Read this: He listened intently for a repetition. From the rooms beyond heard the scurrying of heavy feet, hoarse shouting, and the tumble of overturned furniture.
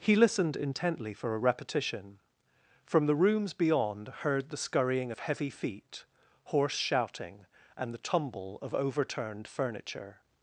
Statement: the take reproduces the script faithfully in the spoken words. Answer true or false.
true